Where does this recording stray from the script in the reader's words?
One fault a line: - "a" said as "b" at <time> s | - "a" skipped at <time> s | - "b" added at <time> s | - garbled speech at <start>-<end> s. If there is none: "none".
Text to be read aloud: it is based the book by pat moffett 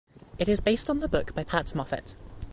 - "on" added at 0.9 s